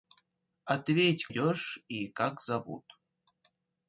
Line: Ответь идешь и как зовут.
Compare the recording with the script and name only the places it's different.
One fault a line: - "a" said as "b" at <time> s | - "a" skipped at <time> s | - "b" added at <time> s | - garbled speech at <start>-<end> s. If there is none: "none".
none